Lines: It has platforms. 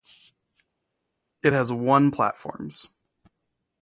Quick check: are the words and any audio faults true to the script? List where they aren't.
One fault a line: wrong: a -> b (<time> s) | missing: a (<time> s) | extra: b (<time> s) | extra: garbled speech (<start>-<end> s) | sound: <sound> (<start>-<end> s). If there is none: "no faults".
extra: one (1.7 s)